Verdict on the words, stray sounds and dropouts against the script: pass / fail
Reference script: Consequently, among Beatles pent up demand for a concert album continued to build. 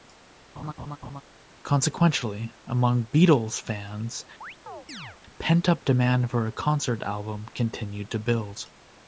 fail